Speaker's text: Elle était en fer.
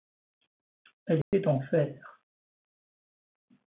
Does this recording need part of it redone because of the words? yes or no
no